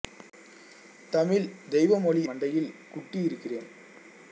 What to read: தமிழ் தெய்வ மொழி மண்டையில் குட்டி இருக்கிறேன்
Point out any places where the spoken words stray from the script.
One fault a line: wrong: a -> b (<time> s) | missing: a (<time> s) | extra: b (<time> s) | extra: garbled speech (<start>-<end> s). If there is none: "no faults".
no faults